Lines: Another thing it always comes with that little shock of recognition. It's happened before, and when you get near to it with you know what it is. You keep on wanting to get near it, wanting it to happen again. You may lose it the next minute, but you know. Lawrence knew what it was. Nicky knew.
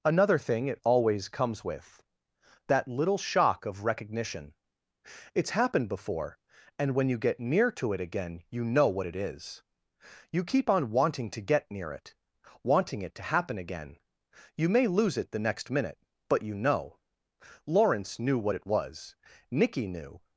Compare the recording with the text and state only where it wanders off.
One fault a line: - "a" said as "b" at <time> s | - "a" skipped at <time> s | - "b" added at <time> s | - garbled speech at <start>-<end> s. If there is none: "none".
- "with" said as "again" at 8.0 s